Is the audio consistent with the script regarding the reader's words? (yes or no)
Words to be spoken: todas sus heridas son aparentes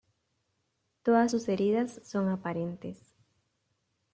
yes